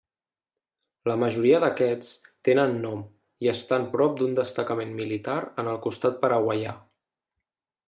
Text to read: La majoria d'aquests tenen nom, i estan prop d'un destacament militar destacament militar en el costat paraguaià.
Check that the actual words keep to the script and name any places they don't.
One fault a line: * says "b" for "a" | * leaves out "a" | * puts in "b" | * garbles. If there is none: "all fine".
* leaves out "destacament militar"